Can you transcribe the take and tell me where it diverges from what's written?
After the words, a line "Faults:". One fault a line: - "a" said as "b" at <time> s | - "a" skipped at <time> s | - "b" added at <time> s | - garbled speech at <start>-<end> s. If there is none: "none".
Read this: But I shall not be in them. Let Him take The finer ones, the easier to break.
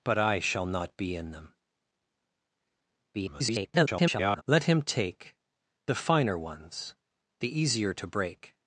But I shall not be in them. [garbled] Let Him take The finer ones, the easier to break.
Faults:
- garbled speech at 3.1-4.4 s